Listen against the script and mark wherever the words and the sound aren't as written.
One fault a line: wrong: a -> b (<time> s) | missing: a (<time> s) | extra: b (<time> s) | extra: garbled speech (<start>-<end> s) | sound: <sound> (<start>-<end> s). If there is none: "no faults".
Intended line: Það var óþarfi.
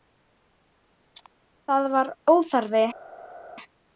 no faults